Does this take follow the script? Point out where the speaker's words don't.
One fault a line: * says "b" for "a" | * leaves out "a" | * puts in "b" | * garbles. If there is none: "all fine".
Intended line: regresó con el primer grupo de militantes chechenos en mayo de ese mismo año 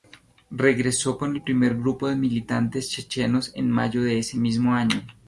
all fine